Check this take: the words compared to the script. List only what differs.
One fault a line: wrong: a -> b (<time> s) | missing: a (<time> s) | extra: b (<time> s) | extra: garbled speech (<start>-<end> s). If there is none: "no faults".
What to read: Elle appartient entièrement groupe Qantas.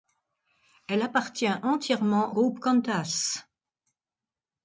no faults